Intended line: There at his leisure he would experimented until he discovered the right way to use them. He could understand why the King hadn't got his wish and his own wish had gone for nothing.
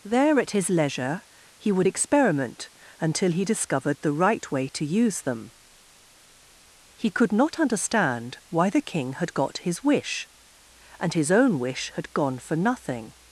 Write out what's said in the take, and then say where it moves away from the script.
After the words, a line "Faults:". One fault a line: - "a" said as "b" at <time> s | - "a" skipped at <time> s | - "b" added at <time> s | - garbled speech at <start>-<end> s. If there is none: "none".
There at his leisure he would experiment until he discovered the right way to use them. He could not understand why the King had got his wish and his own wish had gone for nothing.
Faults:
- "experimented" said as "experiment" at 1.9 s
- "not" added at 7.3 s
- "hadn't" said as "had" at 9.1 s